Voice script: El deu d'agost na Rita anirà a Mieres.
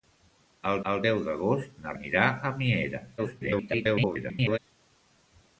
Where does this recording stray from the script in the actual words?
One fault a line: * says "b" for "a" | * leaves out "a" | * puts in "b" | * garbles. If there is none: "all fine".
* puts in "el"
* leaves out "Rita"
* garbles